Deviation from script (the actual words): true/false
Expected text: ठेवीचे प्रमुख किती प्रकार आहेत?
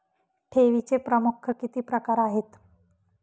false